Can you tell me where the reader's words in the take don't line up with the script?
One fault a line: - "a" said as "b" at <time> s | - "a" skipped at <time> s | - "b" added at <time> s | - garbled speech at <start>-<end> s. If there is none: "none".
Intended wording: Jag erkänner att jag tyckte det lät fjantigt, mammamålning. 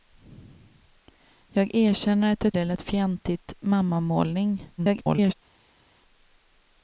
- "tyckte" skipped at 2.5 s
- garbled speech at 4.8-5.3 s